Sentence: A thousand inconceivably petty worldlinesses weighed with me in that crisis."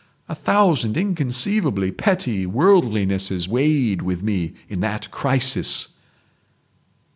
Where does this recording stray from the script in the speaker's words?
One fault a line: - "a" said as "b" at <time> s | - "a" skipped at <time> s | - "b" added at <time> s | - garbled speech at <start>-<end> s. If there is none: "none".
none